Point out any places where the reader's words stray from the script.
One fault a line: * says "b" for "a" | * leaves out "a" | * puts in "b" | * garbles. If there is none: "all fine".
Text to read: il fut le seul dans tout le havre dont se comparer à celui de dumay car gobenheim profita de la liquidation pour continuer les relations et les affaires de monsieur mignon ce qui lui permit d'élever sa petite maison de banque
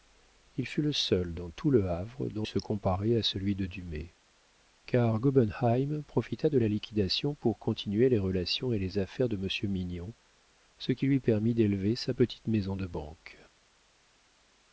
all fine